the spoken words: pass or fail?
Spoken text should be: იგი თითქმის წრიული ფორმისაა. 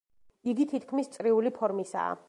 pass